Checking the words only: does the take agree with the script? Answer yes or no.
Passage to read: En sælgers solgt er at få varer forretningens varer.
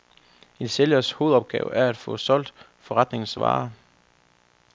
no